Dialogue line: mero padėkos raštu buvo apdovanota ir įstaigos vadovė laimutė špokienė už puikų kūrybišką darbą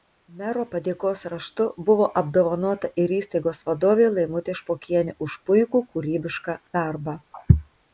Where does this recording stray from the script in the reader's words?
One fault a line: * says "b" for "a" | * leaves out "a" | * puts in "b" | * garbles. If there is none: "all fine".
all fine